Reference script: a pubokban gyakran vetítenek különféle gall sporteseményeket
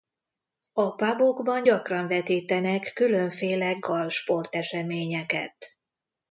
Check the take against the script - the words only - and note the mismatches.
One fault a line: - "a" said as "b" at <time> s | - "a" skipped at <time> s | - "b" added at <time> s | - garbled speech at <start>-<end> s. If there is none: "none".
none